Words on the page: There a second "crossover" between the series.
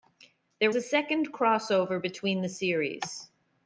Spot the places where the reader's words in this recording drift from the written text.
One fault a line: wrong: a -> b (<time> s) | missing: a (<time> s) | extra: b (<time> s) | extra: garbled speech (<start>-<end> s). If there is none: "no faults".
no faults